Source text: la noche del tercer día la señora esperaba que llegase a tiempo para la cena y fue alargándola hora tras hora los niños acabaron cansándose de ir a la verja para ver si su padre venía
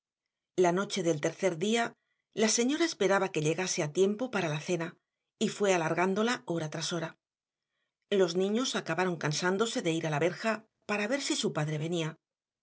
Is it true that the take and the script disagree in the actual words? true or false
false